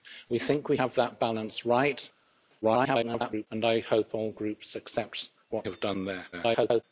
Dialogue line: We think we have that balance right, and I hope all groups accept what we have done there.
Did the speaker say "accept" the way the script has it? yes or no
yes